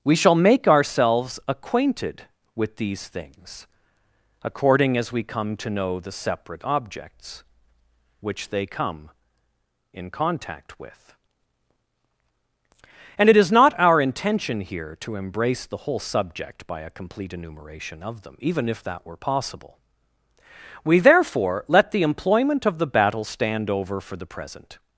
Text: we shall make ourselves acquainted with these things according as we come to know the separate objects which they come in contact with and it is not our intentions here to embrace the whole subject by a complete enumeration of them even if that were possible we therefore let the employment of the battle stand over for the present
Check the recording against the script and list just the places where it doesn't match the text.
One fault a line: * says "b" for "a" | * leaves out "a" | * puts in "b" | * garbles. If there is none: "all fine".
* says "intention" for "intentions"